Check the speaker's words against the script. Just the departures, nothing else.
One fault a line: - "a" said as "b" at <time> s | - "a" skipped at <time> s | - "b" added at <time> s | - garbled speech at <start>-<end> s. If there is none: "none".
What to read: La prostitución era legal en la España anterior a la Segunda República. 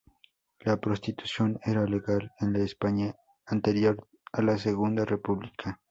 none